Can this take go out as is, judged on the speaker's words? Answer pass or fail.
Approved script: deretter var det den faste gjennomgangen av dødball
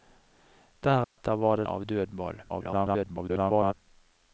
fail